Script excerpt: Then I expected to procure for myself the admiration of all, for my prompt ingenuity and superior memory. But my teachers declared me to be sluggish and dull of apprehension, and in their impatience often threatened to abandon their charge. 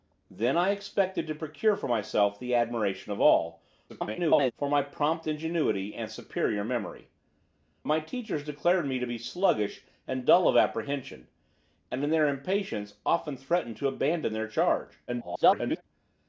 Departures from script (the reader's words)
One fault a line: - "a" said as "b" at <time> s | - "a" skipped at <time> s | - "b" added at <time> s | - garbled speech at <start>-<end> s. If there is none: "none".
- garbled speech at 3.9-4.5 s
- "But" skipped at 7.1 s
- garbled speech at 15.1-15.8 s